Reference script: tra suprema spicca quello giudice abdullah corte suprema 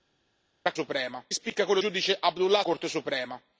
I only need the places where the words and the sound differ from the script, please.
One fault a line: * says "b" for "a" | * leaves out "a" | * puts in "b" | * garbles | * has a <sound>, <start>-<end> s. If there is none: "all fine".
all fine